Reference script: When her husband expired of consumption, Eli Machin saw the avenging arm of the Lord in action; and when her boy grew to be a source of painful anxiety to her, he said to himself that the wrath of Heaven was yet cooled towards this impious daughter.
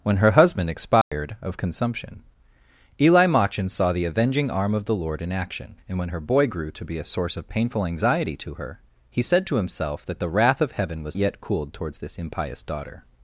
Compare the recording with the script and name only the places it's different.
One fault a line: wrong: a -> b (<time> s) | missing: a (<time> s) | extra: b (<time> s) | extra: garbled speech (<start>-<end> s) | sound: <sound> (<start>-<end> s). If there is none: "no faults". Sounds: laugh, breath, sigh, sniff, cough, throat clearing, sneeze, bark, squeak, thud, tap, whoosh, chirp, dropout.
sound: dropout (1.0-1.1 s)